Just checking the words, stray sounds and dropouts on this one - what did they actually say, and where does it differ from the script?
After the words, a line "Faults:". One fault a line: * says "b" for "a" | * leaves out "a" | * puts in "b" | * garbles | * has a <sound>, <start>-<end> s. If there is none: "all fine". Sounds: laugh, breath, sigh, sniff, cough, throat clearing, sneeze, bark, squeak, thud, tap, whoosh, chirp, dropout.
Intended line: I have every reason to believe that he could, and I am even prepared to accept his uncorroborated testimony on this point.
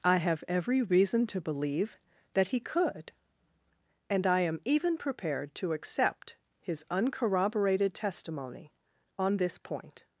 I have every reason to believe that he could, and I am even prepared to accept his uncorroborated testimony on this point.
Faults:
all fine